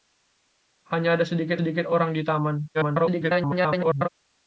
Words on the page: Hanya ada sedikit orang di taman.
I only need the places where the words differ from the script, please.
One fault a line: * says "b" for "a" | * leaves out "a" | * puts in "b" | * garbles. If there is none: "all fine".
* puts in "sedikit"
* garbles